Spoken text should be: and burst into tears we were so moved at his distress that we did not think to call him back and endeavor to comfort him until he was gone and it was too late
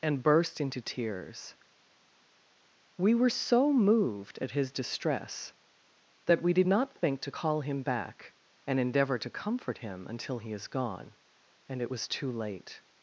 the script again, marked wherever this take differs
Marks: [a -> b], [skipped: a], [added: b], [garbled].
and burst into tears we were so moved at his distress that we did not think to call him back and endeavor to comfort him until he [was -> is] gone and it was too late